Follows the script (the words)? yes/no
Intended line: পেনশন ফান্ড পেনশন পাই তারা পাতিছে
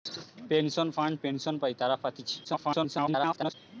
no